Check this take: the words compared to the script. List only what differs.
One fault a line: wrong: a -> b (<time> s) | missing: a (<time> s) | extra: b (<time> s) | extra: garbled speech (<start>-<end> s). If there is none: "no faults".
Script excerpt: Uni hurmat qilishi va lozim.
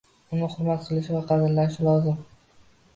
extra: qadrlashi (1.3 s)